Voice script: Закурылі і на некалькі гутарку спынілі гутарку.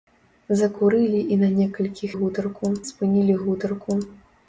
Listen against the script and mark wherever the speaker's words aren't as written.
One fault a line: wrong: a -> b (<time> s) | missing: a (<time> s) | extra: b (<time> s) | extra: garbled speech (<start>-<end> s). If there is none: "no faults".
no faults